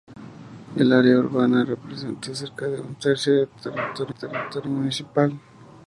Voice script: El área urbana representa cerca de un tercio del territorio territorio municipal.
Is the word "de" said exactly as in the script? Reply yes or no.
yes